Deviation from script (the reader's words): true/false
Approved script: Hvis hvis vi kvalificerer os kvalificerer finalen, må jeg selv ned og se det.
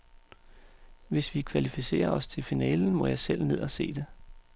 true